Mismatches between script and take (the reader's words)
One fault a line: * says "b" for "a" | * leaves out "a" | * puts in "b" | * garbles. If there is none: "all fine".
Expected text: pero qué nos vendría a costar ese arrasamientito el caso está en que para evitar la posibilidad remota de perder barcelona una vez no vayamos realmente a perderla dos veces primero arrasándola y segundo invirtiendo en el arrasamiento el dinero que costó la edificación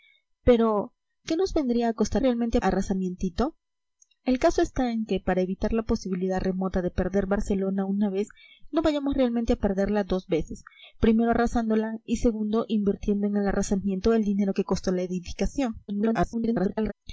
* says "realmente" for "ese"
* garbles